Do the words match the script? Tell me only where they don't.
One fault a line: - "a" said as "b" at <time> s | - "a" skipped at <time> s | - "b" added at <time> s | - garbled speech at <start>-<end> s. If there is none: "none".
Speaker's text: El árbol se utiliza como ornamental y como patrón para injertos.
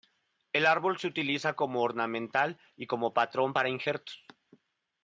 none